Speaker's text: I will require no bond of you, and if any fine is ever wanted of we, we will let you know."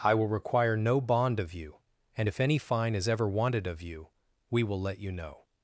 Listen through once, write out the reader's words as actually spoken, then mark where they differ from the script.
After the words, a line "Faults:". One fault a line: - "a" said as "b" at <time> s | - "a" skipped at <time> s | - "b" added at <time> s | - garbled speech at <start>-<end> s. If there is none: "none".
I will require no bond of you, and if any fine is ever wanted of you, we will let you know."
Faults:
- "we" said as "you" at 3.8 s